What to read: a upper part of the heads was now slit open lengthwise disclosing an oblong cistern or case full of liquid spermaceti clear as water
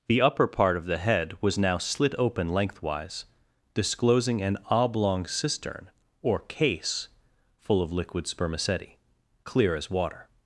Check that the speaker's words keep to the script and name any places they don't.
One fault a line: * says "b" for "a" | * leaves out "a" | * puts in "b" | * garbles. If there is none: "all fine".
* says "the" for "a"
* says "head" for "heads"